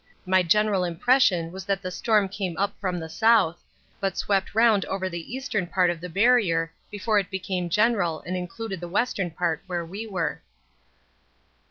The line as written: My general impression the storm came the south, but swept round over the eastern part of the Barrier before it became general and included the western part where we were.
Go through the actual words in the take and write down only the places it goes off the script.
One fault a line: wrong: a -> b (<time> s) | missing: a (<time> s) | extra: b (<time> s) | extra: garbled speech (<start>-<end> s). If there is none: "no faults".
extra: was that (1.5 s)
extra: up from (2.6 s)